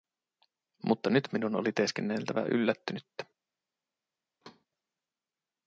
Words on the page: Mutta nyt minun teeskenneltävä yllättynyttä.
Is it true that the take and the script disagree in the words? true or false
true